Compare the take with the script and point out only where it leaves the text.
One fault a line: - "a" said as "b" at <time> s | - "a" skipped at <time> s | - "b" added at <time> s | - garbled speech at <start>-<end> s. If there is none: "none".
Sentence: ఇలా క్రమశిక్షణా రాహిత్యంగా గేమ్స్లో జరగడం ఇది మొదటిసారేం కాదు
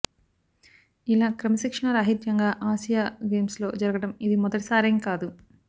- "ఆసియా" added at 2.7 s